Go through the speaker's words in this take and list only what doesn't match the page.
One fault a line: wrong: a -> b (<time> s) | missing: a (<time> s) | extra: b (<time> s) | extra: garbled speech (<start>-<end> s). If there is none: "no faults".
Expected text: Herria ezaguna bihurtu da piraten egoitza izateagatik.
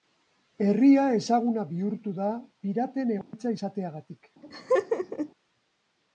no faults